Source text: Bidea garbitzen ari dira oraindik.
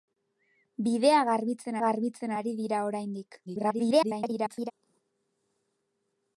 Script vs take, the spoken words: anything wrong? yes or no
yes